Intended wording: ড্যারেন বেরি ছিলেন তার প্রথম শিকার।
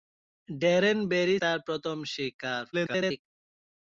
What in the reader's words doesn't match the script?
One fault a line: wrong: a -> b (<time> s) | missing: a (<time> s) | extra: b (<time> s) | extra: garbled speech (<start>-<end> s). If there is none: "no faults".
missing: ছিলেন (1.4 s)
extra: garbled speech (2.7-3.3 s)